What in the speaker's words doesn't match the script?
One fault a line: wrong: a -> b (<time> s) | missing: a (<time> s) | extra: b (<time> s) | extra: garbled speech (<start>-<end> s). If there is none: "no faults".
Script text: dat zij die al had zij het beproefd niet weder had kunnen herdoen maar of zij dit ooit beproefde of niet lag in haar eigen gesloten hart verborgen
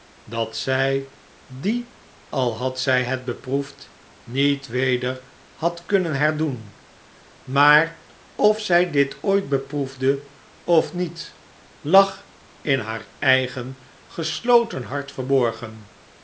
no faults